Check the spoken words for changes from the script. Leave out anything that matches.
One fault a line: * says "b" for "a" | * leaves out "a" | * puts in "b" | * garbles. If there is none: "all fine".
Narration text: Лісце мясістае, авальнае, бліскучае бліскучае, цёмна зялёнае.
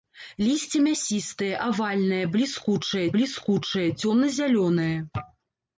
all fine